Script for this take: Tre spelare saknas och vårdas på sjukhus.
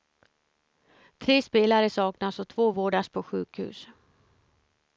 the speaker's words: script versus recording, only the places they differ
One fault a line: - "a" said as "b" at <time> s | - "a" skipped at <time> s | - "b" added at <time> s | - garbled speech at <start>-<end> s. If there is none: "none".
- "två" added at 2.5 s